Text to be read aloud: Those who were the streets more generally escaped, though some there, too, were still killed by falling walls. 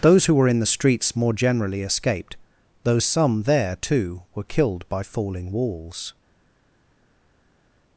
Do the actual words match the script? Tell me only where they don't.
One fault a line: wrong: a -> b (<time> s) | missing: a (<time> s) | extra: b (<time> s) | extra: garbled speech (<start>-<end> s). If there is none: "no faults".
extra: in (0.5 s)
missing: still (4.4 s)